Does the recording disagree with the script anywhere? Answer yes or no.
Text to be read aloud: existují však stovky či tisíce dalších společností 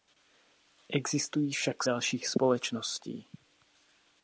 yes